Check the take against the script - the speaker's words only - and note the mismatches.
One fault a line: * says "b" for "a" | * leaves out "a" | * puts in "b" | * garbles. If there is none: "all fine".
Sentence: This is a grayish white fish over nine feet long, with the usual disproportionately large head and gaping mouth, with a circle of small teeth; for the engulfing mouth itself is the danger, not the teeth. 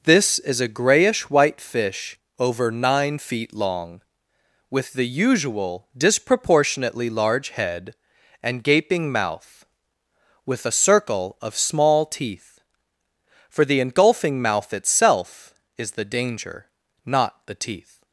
all fine